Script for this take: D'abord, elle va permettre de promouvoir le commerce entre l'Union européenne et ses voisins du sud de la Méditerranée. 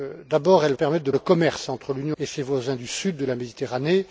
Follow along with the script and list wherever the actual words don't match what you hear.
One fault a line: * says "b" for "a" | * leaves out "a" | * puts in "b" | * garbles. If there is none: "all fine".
* leaves out "va"
* leaves out "promouvoir"
* leaves out "européenne"